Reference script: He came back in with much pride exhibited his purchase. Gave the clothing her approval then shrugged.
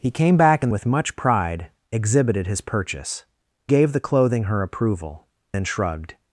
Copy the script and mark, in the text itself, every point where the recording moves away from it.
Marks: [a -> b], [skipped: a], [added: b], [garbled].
He came back in with much pride exhibited his purchase. Gave the clothing her approval then shrugged.